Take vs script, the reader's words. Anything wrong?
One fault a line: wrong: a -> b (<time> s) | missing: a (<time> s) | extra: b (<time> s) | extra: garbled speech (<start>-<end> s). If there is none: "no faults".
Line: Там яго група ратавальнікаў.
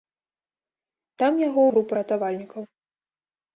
no faults